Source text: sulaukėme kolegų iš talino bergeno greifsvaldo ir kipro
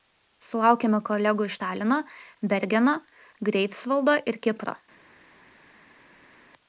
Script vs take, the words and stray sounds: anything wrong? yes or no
no